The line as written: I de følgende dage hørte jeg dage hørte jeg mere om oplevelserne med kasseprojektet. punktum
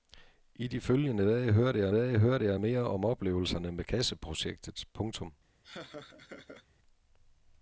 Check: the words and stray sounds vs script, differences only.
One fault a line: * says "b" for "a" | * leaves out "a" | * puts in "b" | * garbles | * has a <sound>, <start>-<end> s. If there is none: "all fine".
* has a laugh, 5.6-6.7 s